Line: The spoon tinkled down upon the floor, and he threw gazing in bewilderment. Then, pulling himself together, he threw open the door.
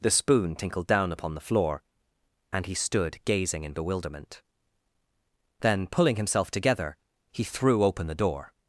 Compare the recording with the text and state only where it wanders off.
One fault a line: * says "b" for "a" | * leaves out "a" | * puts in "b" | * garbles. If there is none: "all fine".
* says "stood" for "threw"